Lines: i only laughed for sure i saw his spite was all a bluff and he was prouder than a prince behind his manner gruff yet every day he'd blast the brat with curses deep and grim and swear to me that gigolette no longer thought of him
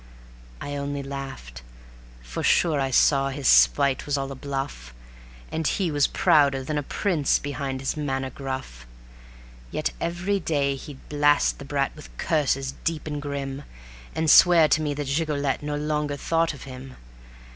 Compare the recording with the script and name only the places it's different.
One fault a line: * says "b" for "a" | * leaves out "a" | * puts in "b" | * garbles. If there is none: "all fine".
all fine